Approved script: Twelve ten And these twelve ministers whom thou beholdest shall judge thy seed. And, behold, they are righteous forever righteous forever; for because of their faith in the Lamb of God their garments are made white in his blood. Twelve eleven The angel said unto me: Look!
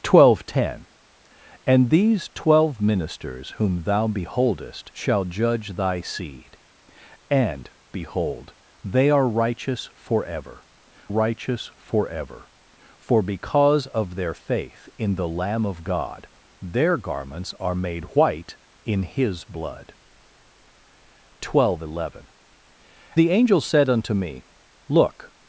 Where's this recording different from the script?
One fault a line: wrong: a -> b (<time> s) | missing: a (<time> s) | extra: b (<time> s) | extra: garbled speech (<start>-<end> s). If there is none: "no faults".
no faults